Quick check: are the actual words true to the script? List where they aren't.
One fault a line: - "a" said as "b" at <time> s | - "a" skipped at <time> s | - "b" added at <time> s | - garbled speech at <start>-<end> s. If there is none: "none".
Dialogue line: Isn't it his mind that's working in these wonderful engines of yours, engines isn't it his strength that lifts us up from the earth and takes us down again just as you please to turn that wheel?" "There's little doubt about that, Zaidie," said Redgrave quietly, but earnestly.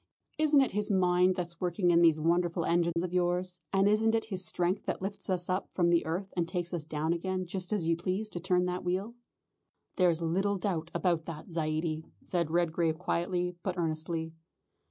- "engines" said as "and" at 3.7 s